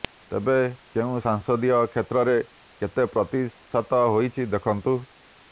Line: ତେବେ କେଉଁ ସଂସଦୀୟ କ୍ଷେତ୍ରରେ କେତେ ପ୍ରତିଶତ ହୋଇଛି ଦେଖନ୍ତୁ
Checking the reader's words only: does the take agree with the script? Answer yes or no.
yes